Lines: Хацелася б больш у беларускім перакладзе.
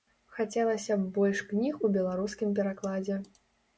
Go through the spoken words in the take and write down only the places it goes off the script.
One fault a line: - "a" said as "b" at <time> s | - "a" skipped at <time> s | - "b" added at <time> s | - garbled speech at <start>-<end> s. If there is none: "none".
- "кніг" added at 1.5 s